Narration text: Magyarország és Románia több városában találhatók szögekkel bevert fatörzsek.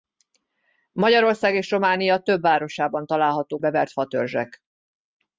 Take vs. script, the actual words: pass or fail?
fail